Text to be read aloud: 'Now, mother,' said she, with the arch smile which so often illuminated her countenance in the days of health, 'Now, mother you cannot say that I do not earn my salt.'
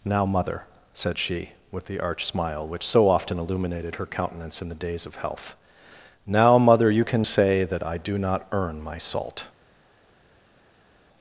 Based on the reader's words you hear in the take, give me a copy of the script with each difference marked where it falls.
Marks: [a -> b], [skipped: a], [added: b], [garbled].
'Now, mother,' said she, with the arch smile which so often illuminated her countenance in the days of health, 'Now, mother you [cannot -> can] say that I do not earn my salt.'